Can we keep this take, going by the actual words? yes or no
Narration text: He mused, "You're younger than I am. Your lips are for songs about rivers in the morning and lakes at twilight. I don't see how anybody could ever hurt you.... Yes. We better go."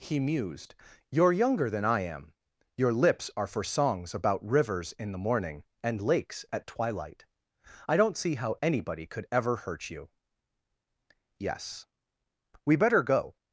yes